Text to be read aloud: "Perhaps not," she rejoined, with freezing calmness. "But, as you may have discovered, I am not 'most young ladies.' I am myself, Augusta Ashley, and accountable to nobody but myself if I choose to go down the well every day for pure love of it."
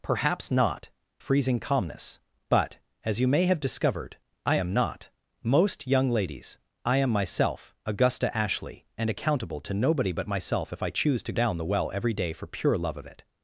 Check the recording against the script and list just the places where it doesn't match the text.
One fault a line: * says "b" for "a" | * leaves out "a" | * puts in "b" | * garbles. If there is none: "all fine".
* leaves out "she rejoined with"
* leaves out "go"